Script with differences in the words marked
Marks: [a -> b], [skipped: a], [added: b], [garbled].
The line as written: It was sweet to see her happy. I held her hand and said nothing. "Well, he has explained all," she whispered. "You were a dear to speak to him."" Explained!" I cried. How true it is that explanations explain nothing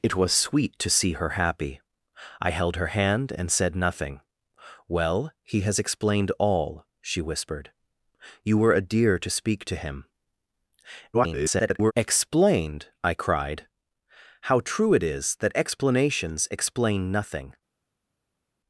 It was sweet to see her happy. I held her hand and said nothing. "Well, he has explained all," she whispered. "You were a dear to speak to him."" [garbled] Explained!" I cried. How true it is that explanations explain nothing